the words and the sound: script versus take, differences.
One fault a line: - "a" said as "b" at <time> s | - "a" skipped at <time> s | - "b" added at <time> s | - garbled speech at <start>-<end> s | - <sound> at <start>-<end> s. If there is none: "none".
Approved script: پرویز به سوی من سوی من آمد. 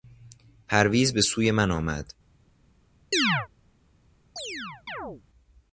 - "سوی من" skipped at 1.7 s
- chirp at 3.1-3.5 s
- chirp at 4.4-5.2 s